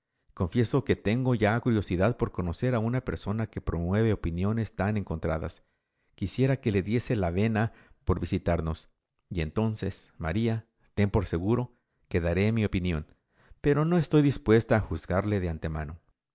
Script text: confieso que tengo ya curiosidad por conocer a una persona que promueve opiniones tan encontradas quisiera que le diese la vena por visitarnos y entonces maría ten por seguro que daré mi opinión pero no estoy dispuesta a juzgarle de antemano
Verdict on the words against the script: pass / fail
pass